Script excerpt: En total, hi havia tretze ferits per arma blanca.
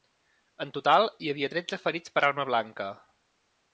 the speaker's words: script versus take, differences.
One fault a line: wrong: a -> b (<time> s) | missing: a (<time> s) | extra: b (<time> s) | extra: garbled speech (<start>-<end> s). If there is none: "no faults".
no faults